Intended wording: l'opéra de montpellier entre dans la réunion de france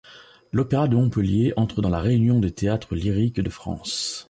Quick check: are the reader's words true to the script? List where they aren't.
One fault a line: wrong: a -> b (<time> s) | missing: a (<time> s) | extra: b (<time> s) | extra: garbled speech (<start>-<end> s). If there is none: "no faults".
extra: des théâtres lyriques (2.4 s)